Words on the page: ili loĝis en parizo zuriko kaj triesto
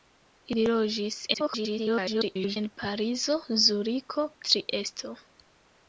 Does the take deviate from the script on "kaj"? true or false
true